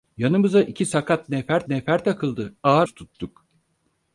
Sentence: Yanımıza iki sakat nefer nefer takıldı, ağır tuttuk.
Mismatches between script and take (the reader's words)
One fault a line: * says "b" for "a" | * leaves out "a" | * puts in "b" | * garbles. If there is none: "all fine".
all fine